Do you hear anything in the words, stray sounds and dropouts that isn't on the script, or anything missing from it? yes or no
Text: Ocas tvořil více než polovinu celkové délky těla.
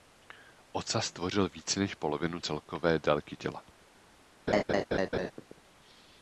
yes